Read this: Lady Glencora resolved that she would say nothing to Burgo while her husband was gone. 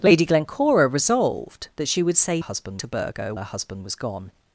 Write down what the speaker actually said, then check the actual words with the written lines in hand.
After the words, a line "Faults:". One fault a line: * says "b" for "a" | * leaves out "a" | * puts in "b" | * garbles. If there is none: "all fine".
Lady Glencora resolved that she would say husband to Burgo her husband was gone.
Faults:
* says "husband" for "nothing"
* leaves out "while"